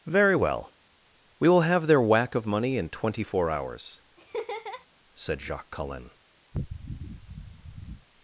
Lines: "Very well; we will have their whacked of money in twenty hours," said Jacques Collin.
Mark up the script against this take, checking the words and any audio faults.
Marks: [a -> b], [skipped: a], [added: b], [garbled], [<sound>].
"Very well; we will have their [whacked -> whack] of money in twenty [added: four] hours," [laugh] said Jacques Collin. [sniff]